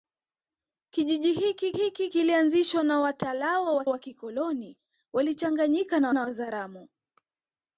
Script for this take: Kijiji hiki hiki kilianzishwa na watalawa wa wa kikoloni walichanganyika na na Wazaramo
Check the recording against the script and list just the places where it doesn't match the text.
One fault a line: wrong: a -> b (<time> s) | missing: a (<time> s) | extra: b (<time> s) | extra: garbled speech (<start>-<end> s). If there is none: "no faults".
no faults